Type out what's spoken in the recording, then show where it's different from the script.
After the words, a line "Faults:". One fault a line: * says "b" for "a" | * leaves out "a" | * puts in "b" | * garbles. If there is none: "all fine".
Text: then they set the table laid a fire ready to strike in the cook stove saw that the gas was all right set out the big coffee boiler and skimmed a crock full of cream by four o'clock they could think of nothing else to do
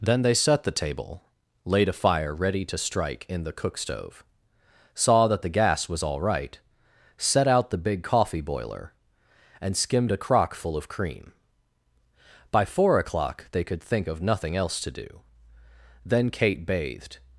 then they set the table laid a fire ready to strike in the cook stove saw that the gas was all right set out the big coffee boiler and skimmed a crock full of cream by four o'clock they could think of nothing else to do then kate bathed
Faults:
* puts in "then kate bathed"